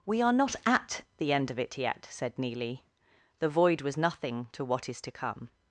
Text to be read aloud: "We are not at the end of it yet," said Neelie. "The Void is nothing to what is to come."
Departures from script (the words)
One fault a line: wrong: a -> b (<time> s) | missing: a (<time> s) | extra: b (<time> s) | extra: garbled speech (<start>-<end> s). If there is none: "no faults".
wrong: is -> was (3.8 s)